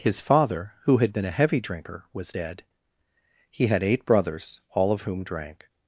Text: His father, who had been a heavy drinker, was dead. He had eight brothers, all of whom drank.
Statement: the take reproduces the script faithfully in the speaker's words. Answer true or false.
true